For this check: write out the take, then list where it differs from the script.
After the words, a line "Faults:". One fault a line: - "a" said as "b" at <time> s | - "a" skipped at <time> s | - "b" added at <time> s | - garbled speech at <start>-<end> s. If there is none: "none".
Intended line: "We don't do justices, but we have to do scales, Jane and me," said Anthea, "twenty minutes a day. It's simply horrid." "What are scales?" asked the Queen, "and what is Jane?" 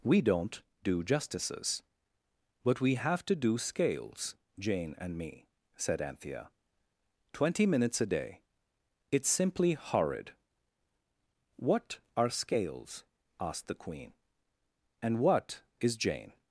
"We don't do justices, but we have to do scales, Jane and me," said Anthea, "twenty minutes a day. It's simply horrid." "What are scales?" asked the Queen, "and what is Jane?"
Faults:
none